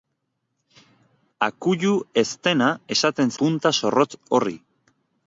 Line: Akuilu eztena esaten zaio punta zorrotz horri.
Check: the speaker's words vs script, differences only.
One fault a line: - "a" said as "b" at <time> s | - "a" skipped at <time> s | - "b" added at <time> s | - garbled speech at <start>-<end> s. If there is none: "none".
- "zaio" skipped at 3.4 s